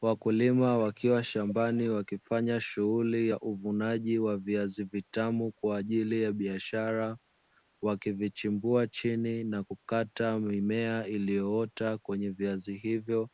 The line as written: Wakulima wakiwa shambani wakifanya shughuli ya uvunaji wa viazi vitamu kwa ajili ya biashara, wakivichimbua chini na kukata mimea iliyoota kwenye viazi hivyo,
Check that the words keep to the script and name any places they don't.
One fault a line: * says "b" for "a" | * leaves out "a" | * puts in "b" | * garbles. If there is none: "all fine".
all fine